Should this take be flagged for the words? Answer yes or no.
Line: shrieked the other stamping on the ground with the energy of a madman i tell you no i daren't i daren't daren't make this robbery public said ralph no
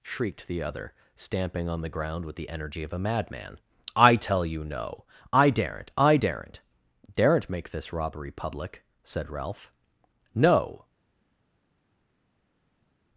no